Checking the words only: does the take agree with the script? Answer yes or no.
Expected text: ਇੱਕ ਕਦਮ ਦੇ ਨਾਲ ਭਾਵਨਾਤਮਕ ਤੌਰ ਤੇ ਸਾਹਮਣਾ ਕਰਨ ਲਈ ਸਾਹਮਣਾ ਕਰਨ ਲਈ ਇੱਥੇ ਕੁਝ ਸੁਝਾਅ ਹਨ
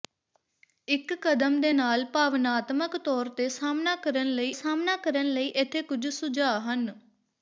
yes